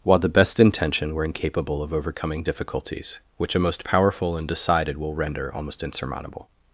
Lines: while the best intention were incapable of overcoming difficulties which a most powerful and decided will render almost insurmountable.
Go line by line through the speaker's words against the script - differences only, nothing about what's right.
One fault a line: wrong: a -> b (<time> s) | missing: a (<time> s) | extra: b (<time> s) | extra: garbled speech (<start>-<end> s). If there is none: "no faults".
no faults